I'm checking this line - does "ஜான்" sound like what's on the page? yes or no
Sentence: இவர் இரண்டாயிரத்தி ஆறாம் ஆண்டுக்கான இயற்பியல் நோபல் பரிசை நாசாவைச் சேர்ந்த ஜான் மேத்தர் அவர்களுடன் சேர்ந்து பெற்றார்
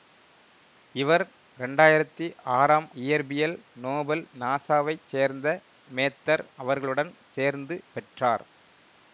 no